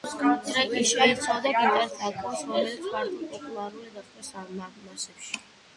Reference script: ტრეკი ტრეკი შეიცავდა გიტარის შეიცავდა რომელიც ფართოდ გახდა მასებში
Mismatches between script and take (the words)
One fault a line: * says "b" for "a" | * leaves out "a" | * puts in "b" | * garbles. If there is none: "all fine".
* leaves out "ტრეკი"
* says "აკორდს" for "შეიცავდა"
* puts in "პოპულარული"